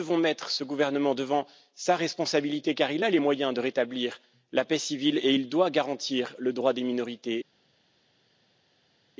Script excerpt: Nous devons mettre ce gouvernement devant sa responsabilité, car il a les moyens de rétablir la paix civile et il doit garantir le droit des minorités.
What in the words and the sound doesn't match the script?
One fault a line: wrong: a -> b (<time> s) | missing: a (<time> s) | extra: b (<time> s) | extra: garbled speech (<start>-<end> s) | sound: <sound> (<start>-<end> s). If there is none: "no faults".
no faults